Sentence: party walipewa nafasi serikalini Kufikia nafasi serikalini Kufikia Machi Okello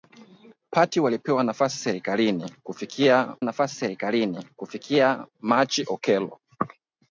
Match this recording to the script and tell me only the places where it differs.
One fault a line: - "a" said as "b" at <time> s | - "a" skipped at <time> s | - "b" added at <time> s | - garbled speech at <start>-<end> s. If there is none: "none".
none